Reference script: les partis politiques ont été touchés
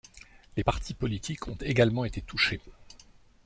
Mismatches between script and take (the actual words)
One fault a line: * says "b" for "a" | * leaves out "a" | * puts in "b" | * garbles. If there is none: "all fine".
* puts in "également"